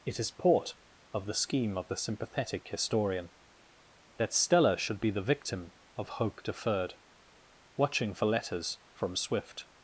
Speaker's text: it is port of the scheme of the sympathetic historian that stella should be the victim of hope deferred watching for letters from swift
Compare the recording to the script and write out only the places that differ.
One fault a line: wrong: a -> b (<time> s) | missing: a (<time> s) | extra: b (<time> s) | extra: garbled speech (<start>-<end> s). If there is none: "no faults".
no faults